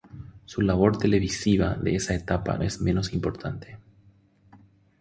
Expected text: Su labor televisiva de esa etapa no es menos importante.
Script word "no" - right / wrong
wrong